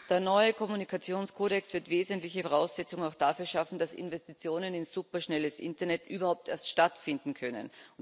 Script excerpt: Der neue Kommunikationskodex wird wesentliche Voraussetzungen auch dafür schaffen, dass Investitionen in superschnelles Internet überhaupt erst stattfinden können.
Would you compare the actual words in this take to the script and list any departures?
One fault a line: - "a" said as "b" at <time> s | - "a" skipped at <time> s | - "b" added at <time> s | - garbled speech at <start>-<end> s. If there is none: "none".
none